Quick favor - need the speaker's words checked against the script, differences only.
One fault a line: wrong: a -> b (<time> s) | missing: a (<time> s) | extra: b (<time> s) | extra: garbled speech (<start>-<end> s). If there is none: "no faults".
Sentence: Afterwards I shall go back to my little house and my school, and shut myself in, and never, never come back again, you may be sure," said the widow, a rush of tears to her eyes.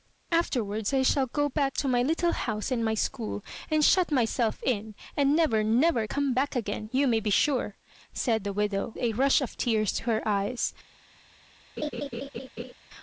no faults